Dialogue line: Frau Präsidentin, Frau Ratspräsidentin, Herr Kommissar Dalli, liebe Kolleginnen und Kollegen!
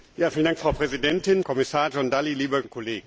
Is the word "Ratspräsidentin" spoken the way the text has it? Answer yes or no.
no